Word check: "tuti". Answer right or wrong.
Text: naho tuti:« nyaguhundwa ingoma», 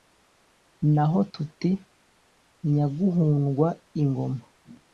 right